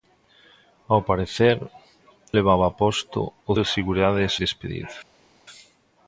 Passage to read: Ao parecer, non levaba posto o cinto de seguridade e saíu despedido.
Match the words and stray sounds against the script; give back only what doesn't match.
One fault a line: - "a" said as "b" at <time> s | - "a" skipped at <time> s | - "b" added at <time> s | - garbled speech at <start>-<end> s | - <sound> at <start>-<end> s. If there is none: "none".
- "non" skipped at 1.6 s
- "cinto" skipped at 3.5 s
- "saíu" skipped at 4.3 s